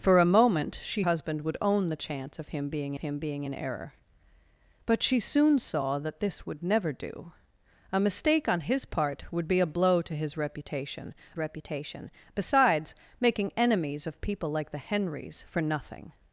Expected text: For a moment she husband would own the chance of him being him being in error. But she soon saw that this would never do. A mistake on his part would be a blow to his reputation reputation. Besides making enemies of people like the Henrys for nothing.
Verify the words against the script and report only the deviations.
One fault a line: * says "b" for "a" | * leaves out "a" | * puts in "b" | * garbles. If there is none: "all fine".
all fine